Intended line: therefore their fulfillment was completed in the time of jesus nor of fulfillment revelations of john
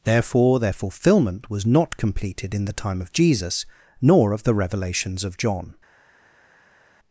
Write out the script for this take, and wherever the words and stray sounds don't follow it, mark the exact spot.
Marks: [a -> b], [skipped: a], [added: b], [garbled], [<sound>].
therefore their fulfillment was [added: not] completed in the time of jesus nor of [fulfillment -> the] revelations of john